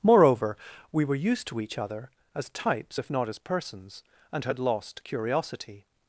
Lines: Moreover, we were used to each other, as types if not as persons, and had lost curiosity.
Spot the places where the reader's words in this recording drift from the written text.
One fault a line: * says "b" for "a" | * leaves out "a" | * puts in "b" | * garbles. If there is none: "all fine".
all fine